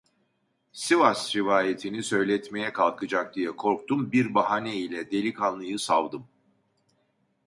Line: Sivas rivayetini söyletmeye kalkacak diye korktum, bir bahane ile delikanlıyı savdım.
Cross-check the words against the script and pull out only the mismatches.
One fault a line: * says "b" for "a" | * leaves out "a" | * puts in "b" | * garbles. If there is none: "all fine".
all fine